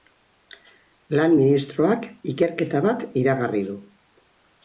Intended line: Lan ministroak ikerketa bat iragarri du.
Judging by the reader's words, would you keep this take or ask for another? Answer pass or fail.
pass